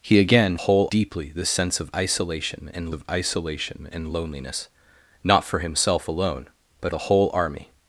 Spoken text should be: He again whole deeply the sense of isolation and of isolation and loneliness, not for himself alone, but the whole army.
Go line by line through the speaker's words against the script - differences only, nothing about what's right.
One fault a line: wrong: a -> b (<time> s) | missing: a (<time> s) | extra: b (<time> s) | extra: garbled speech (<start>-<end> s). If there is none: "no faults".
no faults